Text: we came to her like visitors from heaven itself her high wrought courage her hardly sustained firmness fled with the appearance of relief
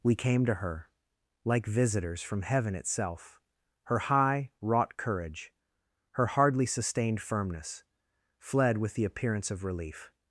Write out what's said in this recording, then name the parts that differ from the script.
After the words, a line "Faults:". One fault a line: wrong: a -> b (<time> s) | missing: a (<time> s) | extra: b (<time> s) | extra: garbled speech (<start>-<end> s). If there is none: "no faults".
we came to her like visitors from heaven itself her high wrought courage her hardly sustained firmness fled with the appearance of relief
Faults:
no faults